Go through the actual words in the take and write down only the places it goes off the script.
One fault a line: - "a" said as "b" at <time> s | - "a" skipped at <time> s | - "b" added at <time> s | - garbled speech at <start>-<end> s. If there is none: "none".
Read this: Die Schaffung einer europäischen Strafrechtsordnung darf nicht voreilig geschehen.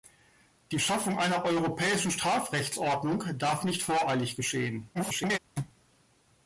- garbled speech at 4.9-5.4 s